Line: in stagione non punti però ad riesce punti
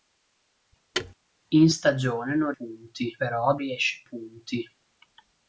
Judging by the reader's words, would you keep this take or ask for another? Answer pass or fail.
pass